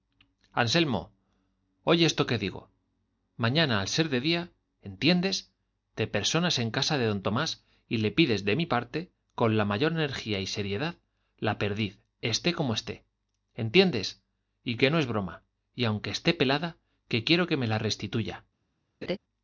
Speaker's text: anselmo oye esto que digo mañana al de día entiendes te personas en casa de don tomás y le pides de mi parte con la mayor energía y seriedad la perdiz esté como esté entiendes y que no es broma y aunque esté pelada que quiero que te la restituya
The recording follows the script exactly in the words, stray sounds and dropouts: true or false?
false